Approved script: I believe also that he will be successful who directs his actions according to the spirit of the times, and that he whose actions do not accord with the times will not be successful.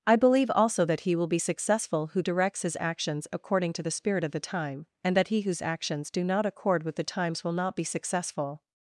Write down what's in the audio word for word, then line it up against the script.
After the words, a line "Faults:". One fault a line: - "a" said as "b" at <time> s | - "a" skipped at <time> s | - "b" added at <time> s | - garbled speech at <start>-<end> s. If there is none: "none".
I believe also that he will be successful who directs his actions according to the spirit of the time, and that he whose actions do not accord with the times will not be successful.
Faults:
- "times" said as "time" at 4.4 s